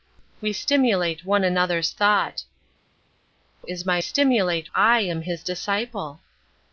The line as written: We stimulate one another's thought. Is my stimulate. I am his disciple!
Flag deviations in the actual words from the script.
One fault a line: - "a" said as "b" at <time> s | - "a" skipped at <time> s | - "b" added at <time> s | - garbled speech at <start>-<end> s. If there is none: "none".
none